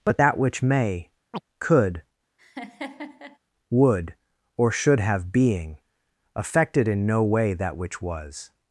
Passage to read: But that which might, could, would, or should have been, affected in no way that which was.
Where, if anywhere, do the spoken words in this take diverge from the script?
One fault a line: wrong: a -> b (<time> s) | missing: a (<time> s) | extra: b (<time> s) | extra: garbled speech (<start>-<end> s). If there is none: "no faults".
wrong: might -> may (0.6 s)
wrong: been -> being (5.3 s)